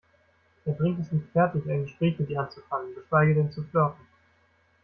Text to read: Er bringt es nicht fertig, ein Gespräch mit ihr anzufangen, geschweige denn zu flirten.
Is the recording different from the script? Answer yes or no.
no